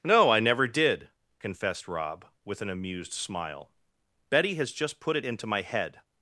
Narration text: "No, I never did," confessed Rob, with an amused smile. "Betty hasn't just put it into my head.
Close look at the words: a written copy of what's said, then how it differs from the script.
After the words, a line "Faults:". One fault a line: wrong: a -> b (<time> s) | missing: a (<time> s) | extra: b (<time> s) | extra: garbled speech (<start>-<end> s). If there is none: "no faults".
"No, I never did," confessed Rob, with an amused smile. "Betty has just put it into my head.
Faults:
wrong: hasn't -> has (4.6 s)